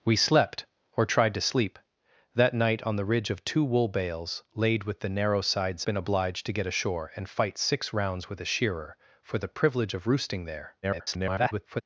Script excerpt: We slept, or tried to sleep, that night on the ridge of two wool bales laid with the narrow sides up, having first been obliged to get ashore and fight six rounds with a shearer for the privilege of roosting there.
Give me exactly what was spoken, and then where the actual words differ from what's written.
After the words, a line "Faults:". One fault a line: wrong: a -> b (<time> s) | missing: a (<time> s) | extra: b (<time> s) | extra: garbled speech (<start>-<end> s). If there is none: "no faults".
We slept, or tried to sleep, that night on the ridge of two wool bales laid with the narrow sides been obliged to get ashore and fight six rounds with a shearer for the privilege of roosting there. [garbled]
Faults:
missing: up having first (5.8 s)
extra: garbled speech (10.8-11.8 s)